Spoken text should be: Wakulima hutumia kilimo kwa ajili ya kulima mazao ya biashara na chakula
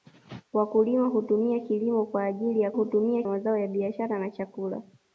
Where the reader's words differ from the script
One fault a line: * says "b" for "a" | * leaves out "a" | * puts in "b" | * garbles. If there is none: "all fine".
* says "hutumia" for "kulima"